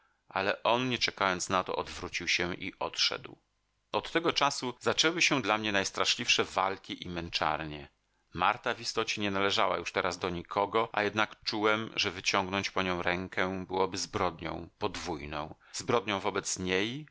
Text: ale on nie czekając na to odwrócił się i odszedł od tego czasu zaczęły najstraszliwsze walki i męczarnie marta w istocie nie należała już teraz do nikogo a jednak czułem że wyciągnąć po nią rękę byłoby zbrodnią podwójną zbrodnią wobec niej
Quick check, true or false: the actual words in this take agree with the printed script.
false